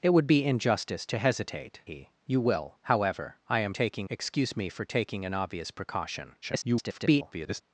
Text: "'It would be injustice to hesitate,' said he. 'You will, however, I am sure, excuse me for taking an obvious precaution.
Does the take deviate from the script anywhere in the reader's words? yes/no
yes